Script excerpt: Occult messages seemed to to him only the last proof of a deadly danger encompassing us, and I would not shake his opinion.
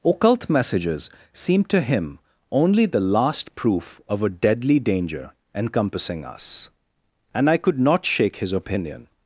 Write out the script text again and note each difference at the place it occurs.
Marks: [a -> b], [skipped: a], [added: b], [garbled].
Occult messages seemed to [skipped: to] him only the last proof of a deadly danger encompassing us, and I [would -> could] not shake his opinion.